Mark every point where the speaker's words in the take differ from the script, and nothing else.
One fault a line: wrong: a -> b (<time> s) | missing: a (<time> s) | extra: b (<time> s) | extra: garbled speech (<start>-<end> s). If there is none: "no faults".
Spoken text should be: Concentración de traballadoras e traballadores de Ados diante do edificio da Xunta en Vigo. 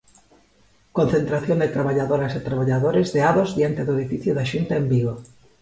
no faults